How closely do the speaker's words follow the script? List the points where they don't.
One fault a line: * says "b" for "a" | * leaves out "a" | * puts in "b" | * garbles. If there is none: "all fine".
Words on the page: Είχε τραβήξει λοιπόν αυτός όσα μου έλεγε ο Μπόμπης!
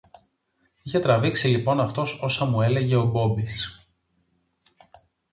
all fine